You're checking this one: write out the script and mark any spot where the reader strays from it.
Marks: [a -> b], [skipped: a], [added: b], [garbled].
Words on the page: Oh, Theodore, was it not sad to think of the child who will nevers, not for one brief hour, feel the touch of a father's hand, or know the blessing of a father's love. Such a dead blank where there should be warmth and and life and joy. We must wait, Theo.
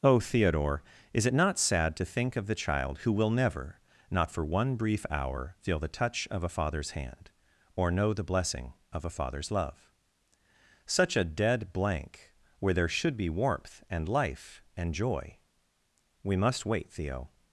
Oh, Theodore, [was -> is] it not sad to think of the child who will [nevers, -> never] not for one brief hour, feel the touch of a father's hand, or know the blessing of a father's love. Such a dead blank where there should be warmth and [skipped: and] life and joy. We must wait, Theo.